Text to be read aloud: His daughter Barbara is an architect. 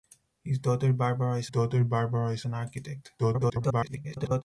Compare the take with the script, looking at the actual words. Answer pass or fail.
fail